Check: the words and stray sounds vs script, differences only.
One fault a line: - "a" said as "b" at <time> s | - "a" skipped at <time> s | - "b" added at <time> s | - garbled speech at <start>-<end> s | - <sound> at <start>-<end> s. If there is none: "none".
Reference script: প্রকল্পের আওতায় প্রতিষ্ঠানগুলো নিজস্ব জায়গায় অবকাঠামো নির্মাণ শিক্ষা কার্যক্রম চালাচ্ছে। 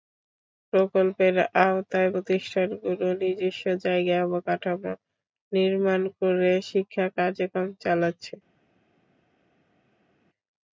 - "করে" added at 6.2 s